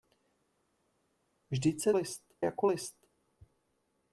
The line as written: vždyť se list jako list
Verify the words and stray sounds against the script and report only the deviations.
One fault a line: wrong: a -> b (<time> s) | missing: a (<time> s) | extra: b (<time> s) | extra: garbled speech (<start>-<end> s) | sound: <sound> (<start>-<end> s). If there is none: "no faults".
no faults